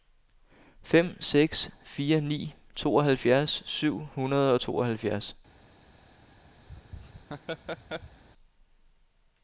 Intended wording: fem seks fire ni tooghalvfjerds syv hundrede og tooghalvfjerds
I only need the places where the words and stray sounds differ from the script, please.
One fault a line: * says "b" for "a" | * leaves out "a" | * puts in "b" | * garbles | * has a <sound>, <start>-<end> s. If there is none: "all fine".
* has a laugh, 6.7-8.2 s